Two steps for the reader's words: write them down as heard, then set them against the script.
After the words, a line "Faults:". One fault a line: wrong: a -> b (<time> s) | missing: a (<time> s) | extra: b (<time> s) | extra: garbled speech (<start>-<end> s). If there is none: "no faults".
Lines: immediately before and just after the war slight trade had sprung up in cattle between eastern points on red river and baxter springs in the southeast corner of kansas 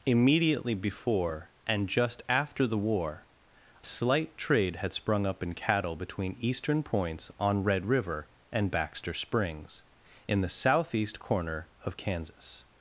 immediately before and just after the war slight trade had sprung up in cattle between eastern points on red river and baxter springs in the southeast corner of kansas
Faults:
no faults